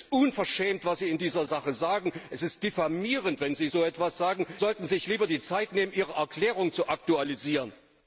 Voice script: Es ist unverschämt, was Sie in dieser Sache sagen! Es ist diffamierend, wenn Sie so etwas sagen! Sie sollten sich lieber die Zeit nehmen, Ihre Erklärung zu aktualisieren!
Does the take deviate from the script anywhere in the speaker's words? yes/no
yes